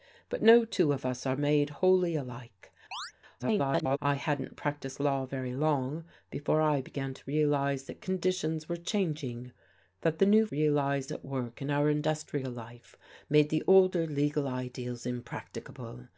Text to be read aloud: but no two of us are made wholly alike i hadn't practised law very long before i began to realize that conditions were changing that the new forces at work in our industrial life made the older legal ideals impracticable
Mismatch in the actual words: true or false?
true